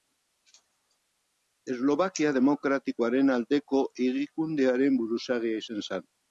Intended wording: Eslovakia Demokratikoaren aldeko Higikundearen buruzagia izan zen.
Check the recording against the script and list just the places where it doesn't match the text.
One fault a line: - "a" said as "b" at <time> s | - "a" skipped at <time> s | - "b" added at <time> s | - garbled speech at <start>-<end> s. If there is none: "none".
none